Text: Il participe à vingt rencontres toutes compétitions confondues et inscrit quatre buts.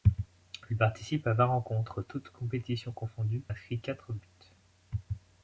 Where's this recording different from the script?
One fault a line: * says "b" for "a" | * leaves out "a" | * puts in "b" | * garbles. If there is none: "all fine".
* leaves out "et"